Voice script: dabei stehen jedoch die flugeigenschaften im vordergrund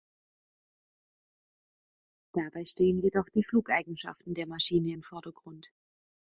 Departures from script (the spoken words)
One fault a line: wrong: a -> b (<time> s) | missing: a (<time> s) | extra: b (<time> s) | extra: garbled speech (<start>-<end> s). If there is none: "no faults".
extra: der maschine (4.3 s)